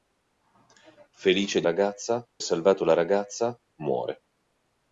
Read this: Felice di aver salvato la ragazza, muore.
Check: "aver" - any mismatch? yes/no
yes